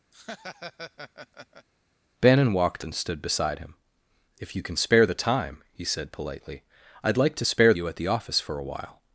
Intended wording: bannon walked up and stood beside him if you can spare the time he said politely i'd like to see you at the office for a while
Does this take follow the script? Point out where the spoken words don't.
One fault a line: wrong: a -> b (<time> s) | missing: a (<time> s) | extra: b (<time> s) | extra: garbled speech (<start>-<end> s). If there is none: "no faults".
missing: up (2.8 s)
wrong: see -> spare (7.4 s)